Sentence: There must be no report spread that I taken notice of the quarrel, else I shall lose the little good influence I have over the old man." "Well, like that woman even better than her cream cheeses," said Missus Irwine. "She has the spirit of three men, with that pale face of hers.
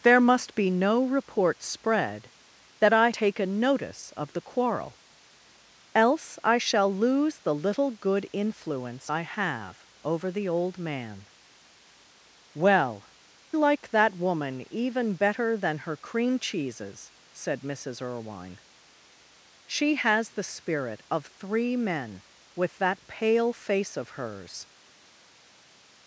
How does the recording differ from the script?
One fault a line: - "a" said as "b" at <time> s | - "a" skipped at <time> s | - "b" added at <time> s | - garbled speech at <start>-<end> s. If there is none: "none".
none